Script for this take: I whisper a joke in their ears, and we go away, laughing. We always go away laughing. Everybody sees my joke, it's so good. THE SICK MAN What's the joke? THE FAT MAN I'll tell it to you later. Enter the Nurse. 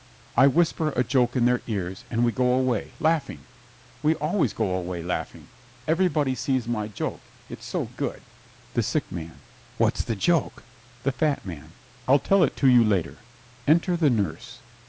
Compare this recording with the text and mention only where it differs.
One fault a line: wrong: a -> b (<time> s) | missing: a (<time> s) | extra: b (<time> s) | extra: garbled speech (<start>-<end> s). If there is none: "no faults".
no faults